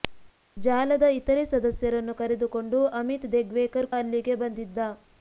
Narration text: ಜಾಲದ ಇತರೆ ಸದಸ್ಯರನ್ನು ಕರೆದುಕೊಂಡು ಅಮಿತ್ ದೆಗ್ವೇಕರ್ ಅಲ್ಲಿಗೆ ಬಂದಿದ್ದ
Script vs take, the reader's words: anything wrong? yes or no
no